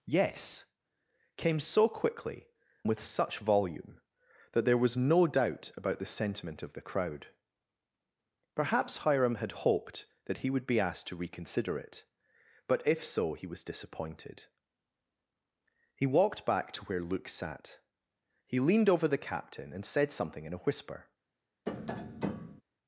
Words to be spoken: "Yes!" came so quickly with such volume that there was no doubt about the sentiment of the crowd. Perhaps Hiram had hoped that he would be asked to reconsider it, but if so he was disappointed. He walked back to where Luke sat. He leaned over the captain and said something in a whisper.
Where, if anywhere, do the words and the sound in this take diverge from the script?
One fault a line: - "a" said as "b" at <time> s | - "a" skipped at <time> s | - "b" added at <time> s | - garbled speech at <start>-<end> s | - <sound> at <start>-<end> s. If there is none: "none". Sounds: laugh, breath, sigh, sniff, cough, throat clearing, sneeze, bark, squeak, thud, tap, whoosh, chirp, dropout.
- tap at 21.7-22.6 s